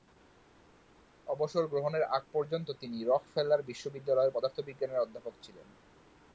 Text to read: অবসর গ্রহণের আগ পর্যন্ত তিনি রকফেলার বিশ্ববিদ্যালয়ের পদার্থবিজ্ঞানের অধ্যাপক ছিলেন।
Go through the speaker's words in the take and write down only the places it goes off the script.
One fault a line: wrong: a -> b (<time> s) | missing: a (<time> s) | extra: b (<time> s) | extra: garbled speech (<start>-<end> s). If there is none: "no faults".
no faults